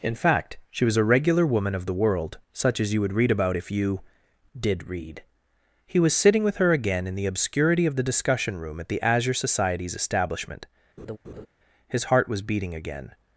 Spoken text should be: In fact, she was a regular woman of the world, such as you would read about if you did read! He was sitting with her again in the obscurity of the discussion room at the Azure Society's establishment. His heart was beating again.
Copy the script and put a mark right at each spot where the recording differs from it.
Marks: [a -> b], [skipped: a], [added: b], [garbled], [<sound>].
In fact, she was a regular woman of the world, such as you would read about if you did read! He was sitting with her again in the obscurity of the discussion room at the Azure Society's establishment. [laugh] His heart was beating again.